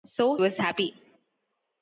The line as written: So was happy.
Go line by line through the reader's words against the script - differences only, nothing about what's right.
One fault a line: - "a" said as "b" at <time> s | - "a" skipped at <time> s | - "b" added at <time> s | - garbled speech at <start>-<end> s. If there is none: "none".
none